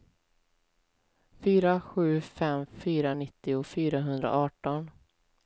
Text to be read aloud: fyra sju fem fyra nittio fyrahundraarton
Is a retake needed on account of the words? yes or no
no